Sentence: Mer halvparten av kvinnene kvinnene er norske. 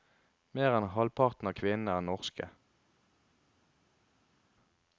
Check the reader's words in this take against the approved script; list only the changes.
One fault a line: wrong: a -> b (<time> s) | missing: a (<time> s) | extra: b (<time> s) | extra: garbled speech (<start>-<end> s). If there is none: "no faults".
extra: enn (0.8 s)
missing: kvinnene (2.0 s)